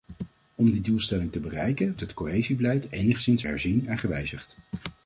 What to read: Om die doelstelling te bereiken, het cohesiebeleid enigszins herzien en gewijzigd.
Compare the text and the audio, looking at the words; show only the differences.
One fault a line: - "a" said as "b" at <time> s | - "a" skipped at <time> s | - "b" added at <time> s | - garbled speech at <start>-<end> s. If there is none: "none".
none